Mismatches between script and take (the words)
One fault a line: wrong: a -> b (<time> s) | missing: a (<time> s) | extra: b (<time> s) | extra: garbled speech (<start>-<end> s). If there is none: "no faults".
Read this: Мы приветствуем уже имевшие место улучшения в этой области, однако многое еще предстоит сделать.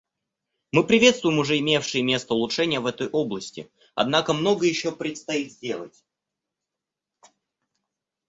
no faults